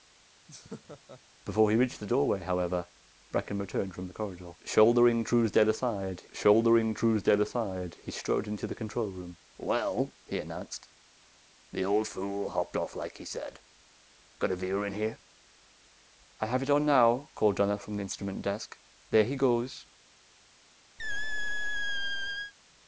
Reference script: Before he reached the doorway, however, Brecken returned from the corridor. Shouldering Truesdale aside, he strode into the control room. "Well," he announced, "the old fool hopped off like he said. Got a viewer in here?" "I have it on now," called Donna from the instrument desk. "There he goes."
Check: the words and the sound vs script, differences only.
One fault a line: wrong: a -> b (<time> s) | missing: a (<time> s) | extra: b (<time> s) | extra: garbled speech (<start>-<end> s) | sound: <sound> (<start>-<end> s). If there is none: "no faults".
sound: laugh (0.5-1.2 s)
extra: shouldering Truesdale aside (6.3 s)
sound: squeak (21.0-22.5 s)